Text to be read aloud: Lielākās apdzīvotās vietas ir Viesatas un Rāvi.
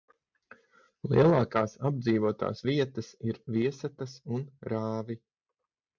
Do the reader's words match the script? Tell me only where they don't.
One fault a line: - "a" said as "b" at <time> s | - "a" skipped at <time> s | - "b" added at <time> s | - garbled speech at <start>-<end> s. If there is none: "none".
none